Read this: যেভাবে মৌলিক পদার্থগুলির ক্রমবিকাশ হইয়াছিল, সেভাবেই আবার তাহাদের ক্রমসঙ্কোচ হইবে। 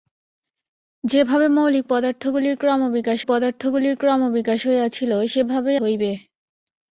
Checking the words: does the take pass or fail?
fail